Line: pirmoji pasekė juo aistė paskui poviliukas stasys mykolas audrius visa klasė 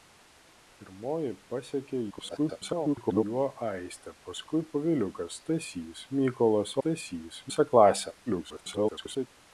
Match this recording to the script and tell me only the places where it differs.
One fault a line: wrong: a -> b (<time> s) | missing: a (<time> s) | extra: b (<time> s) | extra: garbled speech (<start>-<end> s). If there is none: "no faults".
extra: garbled speech (2.1-3.2 s)
wrong: audrius -> stasys (6.8 s)
extra: garbled speech (8.3-9.3 s)